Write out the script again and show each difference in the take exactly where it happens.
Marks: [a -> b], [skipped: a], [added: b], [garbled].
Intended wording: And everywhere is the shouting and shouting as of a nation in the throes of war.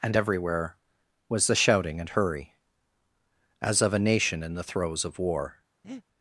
And everywhere [is -> was] the shouting and [shouting -> hurry] as of a nation in the throes of war.